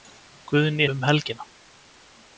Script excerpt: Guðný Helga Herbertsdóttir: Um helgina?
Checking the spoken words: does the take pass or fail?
fail